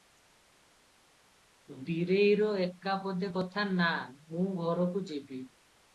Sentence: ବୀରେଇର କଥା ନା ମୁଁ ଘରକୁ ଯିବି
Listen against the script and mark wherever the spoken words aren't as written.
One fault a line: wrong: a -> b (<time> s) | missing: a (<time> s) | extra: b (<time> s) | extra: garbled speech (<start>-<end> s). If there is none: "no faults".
extra: ଏକା ପଦେ (2.6 s)